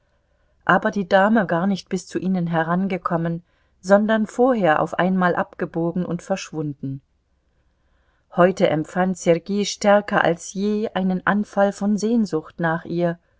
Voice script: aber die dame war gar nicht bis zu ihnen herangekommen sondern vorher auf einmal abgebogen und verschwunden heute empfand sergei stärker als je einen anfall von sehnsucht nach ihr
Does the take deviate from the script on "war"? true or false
true